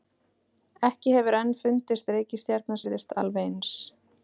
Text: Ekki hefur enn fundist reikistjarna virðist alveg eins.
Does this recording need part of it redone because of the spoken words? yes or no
no